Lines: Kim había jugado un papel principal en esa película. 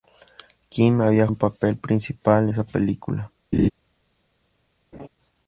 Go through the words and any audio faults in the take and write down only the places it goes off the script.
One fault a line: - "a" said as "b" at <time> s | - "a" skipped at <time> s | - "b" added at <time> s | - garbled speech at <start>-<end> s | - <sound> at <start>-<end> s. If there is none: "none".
- "jugado" skipped at 1.3 s
- "en" skipped at 2.5 s
- laugh at 3.5-3.7 s
- laugh at 4.9-5.1 s